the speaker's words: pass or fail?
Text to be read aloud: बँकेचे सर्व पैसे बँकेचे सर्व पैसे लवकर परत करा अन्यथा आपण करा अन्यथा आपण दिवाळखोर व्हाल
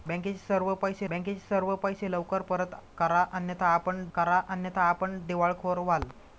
pass